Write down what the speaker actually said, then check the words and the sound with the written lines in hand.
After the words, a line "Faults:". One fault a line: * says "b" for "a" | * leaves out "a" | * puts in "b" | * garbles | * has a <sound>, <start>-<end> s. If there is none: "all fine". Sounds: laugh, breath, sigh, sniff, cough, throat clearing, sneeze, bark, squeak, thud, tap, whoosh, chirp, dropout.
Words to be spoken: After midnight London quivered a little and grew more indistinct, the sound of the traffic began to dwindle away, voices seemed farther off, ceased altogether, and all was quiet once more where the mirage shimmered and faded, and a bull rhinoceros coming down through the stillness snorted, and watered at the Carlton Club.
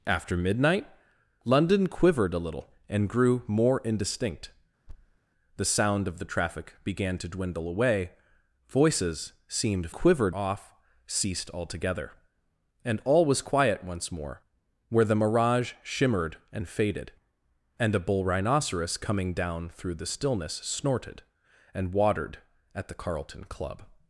After midnight London quivered a little and grew more indistinct, the sound of the traffic began to dwindle away, voices seemed quivered off, ceased altogether, and all was quiet once more where the mirage shimmered and faded, and a bull rhinoceros coming down through the stillness snorted, and watered at the Carlton Club.
Faults:
* has a thud, 4.9-5.2 s
* says "quivered" for "farther"